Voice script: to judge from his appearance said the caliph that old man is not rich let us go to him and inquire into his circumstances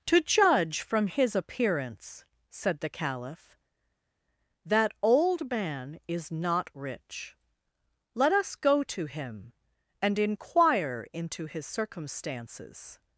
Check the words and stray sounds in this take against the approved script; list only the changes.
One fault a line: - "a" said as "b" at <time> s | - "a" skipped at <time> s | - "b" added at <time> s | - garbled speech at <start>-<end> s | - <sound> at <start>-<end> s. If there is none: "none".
none